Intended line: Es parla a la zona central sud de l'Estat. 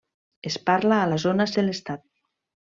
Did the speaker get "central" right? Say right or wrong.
wrong